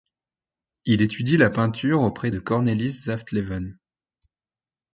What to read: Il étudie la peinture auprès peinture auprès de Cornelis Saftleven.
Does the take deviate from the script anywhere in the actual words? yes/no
yes